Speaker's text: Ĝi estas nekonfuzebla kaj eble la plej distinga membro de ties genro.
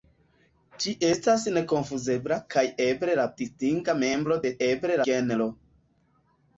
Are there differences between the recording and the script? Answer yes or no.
yes